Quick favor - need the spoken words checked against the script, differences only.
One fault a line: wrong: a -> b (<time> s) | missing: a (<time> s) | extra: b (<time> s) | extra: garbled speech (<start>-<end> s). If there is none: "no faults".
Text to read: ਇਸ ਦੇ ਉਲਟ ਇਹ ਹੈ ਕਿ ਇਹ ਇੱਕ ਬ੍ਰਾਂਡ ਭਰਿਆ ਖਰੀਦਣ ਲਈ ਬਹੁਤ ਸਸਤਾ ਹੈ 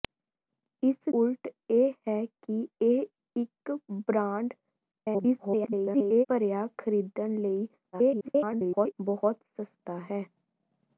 missing: ਦੇ (1.1 s)
extra: garbled speech (4.9-6.3 s)
extra: garbled speech (7.9-8.9 s)